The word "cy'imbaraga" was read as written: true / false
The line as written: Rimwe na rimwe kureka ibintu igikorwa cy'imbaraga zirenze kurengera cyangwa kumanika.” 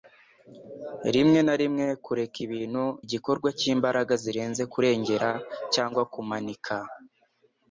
true